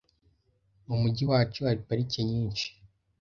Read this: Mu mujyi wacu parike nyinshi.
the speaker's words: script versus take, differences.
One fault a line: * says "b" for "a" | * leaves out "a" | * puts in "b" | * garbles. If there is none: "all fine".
* puts in "hari"